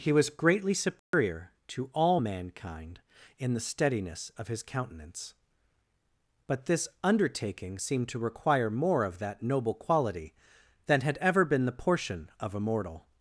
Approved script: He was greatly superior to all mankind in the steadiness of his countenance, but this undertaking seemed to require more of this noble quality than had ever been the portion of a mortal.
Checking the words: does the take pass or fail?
fail